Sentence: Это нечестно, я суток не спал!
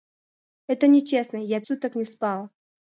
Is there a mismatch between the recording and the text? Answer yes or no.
no